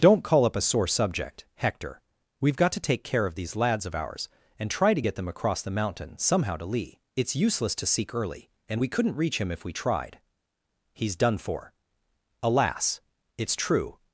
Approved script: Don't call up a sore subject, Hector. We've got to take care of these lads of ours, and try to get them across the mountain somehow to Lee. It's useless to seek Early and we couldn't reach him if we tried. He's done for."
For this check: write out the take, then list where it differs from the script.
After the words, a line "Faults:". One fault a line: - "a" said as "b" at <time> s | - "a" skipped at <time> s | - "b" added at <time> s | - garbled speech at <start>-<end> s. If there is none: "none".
Don't call up a sore subject, Hector. We've got to take care of these lads of ours, and try to get them across the mountain somehow to Lee. It's useless to seek Early and we couldn't reach him if we tried. He's done for." "Alas! It's true
Faults:
- "Alas It's true" added at 12.4 s